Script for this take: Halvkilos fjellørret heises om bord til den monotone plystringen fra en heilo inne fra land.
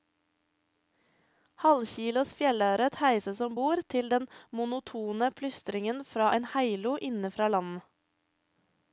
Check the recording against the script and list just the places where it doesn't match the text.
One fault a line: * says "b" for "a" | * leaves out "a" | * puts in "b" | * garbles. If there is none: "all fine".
all fine